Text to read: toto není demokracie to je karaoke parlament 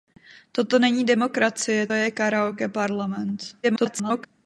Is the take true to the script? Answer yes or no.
no